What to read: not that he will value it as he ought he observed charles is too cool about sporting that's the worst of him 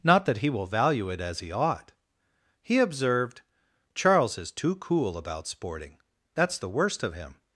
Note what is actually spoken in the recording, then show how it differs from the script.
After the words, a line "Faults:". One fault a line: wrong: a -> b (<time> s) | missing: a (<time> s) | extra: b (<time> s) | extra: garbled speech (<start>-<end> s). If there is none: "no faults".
not that he will value it as he ought he observed charles is too cool about sporting that's the worst of him
Faults:
no faults